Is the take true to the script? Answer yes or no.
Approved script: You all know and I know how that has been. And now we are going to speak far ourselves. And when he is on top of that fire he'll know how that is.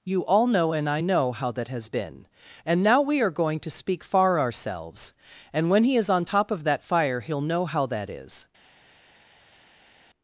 yes